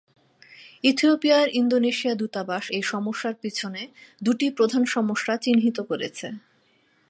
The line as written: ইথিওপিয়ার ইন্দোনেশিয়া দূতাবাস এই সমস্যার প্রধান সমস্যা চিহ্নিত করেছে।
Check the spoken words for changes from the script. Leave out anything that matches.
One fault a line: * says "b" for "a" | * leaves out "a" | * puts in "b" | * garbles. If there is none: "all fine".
* puts in "পিছনে দুটি"